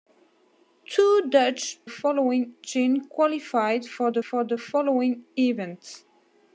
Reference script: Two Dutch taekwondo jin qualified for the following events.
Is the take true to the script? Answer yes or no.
no